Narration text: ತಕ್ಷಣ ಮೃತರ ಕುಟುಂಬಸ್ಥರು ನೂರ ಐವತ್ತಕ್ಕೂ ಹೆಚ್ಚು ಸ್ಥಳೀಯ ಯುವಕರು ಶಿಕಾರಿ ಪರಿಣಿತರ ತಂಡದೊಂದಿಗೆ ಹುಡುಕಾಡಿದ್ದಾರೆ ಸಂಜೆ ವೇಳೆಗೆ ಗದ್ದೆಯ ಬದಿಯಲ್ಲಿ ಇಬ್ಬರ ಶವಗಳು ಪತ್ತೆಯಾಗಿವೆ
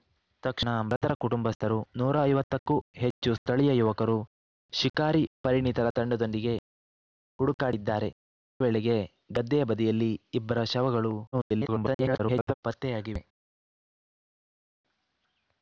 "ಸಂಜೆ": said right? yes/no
no